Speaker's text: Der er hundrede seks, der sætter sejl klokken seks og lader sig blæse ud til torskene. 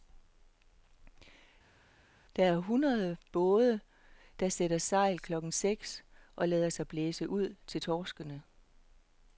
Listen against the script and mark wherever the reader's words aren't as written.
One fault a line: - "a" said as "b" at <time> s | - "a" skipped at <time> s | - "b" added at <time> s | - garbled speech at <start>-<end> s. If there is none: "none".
- "seks" said as "både" at 3.3 s